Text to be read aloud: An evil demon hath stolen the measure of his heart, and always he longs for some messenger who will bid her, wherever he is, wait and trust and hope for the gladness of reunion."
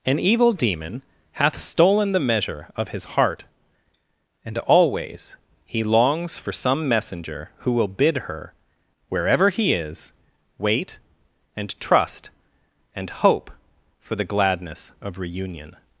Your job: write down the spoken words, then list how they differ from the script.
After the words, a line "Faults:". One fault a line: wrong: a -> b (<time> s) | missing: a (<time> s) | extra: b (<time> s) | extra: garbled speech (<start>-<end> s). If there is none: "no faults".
An evil demon hath stolen the measure of his heart, and always he longs for some messenger who will bid her, wherever he is, wait and trust and hope for the gladness of reunion."
Faults:
no faults